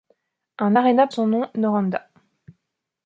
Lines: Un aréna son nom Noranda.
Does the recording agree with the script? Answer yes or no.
yes